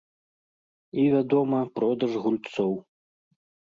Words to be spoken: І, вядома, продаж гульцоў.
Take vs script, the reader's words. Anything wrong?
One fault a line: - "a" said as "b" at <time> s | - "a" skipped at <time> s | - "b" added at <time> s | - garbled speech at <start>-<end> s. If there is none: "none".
none